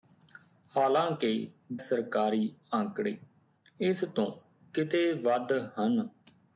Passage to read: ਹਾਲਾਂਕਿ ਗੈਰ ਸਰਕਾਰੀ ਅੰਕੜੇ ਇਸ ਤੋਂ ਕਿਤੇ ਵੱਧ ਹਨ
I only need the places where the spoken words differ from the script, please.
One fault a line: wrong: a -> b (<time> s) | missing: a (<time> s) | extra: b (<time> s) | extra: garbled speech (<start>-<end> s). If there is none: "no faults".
missing: ਗੈਰ (1.5 s)